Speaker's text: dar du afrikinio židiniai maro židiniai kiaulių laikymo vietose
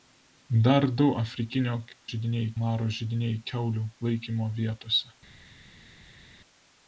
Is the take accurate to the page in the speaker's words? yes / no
yes